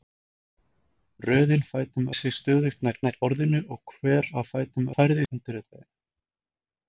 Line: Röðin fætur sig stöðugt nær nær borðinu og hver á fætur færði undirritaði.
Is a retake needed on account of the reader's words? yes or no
no